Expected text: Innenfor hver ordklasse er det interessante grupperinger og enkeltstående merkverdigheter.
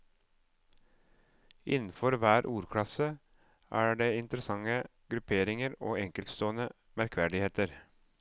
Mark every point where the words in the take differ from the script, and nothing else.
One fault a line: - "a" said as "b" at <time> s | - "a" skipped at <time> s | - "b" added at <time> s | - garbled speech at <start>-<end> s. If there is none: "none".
none